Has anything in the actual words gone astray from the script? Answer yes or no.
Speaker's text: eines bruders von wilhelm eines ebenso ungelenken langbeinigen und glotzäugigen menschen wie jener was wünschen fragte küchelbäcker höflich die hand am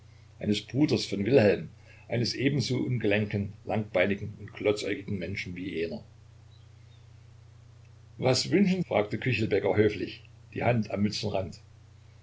no